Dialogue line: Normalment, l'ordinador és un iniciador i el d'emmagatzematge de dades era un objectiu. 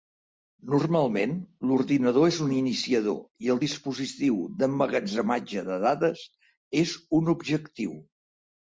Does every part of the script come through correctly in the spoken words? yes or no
no